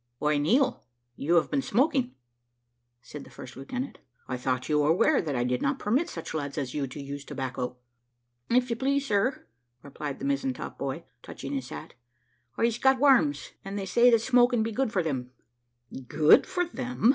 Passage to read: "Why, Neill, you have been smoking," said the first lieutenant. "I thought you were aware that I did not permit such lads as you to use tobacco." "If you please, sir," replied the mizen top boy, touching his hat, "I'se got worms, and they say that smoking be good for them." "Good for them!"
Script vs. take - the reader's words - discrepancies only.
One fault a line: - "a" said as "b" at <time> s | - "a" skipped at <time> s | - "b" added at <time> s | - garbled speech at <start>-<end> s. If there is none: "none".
none